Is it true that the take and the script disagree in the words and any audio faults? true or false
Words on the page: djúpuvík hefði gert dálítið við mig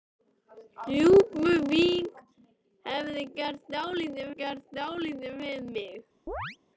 true